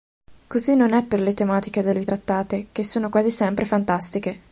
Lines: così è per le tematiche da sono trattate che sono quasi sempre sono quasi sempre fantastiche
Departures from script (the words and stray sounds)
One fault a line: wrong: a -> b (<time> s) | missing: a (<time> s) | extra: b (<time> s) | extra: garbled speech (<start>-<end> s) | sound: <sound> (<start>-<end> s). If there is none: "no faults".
extra: non (0.8 s)
wrong: sono -> lui (1.9 s)
missing: sono quasi sempre (3.6 s)